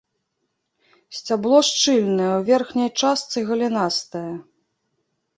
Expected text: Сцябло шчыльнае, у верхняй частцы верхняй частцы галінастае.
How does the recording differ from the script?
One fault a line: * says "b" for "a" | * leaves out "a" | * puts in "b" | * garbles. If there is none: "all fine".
* leaves out "верхняй частцы"